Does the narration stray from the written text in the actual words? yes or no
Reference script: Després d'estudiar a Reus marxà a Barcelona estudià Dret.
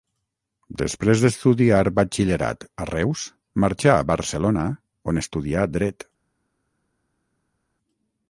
yes